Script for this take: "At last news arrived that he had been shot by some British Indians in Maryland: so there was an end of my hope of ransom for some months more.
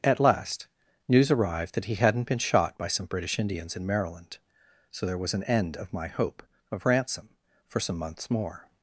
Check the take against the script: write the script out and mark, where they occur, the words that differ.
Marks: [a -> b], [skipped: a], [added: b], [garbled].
"At last news arrived that he [had -> hadn't] been shot by some British Indians in Maryland: so there was an end of my hope of ransom for some months more.